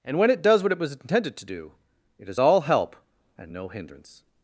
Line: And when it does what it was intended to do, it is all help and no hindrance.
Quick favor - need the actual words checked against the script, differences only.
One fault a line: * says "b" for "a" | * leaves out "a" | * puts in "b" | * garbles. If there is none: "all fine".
all fine